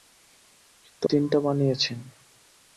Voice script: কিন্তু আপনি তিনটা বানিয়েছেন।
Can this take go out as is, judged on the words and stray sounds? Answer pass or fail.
fail